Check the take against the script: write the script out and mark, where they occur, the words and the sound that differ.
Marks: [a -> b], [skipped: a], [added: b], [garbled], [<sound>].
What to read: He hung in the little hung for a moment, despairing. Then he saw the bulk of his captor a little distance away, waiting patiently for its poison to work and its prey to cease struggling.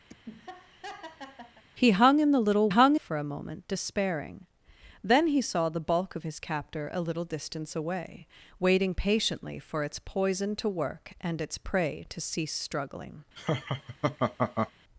[laugh] He hung in the little hung for a moment, despairing. Then he saw the bulk of his captor a little distance away, waiting patiently for its poison to work and its prey to cease struggling. [laugh]